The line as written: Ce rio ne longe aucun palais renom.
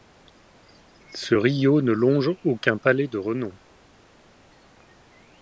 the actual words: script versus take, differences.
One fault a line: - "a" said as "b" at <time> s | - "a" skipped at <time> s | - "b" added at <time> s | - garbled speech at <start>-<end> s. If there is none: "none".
- "de" added at 3.1 s